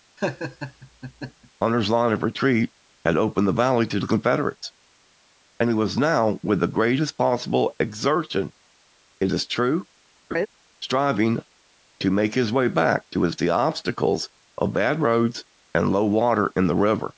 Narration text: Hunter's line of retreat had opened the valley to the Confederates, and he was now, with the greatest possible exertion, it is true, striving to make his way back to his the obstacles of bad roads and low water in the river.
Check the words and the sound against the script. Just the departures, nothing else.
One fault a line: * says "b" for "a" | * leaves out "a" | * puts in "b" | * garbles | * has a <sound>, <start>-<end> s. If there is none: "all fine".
* has a laugh, 0.2-1.5 s
* has a laugh, 10.3-10.5 s